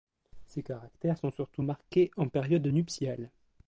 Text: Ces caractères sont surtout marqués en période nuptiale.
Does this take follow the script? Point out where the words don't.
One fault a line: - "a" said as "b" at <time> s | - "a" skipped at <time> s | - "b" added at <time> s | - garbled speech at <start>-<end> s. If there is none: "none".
none